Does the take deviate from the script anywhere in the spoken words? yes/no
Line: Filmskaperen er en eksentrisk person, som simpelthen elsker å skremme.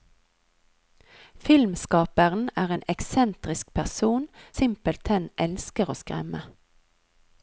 yes